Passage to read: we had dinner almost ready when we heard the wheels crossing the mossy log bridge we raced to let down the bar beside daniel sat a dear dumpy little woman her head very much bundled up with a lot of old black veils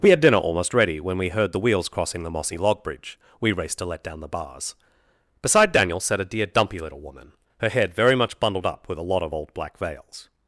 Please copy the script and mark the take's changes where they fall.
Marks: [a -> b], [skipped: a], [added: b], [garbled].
we had dinner almost ready when we heard the wheels crossing the mossy log bridge we raced to let down the [bar -> bars] beside daniel sat a dear dumpy little woman her head very much bundled up with a lot of old black veils